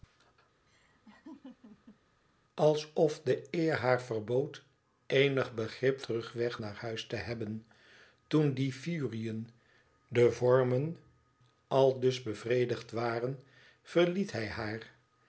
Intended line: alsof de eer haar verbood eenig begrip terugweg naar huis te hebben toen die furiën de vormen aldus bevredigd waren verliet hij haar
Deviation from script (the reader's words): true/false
false